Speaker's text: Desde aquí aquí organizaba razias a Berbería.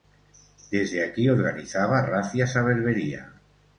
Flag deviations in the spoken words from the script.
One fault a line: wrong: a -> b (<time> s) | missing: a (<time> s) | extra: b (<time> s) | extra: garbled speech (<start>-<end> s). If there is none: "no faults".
missing: aquí (1.3 s)